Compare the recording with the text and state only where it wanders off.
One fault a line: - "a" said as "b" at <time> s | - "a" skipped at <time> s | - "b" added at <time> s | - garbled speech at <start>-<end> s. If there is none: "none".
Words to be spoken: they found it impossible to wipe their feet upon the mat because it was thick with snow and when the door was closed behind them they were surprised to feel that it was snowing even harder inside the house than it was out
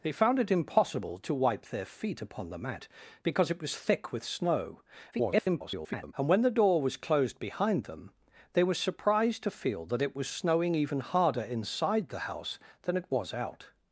- garbled speech at 5.1-6.1 s